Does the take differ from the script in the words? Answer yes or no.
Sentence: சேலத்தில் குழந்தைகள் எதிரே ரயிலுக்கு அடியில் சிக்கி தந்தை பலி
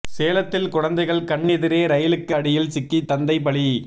yes